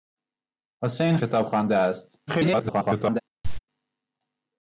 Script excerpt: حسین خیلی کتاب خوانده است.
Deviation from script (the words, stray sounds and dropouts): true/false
true